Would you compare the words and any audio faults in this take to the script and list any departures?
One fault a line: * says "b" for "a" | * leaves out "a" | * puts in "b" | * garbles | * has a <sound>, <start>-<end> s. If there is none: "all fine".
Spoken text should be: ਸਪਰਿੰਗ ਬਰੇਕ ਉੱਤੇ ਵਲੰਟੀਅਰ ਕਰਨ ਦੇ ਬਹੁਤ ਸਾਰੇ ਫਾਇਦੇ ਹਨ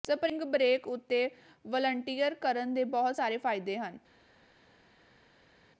all fine